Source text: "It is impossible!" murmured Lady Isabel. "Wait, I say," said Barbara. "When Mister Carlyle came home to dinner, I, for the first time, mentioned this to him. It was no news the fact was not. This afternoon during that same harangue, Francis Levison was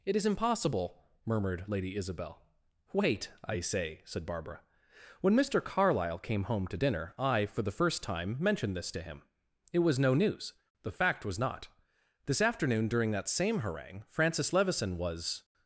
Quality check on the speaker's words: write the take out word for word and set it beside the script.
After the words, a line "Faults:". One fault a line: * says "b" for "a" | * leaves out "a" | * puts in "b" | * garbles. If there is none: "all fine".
"It is impossible!" murmured Lady Isabel. "Wait, I say," said Barbara. "When Mister Carlyle came home to dinner, I, for the first time, mentioned this to him. It was no news the fact was not. This afternoon during that same harangue, Francis Levison was
Faults:
all fine